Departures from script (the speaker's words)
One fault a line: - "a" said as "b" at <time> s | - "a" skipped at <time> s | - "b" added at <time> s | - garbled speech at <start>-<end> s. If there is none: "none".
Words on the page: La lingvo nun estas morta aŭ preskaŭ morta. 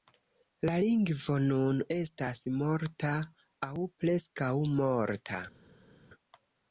none